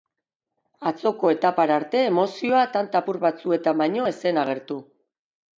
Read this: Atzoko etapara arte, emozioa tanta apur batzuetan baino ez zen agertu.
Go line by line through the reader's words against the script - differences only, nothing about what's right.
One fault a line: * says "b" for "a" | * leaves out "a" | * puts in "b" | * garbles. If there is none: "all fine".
all fine